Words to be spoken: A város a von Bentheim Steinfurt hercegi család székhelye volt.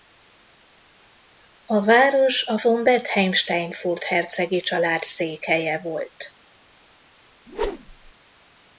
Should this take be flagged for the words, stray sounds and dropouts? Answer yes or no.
yes